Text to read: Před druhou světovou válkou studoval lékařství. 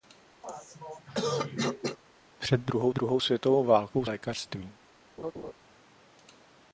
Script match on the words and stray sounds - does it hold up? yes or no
no